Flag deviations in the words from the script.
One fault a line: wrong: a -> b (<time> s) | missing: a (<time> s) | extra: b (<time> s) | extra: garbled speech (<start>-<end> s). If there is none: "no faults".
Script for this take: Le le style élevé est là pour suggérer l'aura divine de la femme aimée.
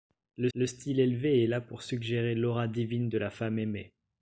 no faults